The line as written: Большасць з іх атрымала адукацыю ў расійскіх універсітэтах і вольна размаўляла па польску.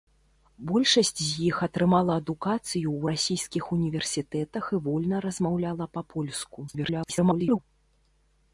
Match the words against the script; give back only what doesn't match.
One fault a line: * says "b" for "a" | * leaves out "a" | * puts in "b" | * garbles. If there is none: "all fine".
* garbles